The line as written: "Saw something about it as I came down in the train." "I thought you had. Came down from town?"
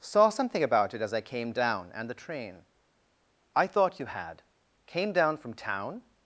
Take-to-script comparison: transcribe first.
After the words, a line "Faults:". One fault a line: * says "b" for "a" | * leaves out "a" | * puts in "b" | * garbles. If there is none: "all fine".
"Saw something about it as I came down and the train." "I thought you had. Came down from town?"
Faults:
* says "and" for "in"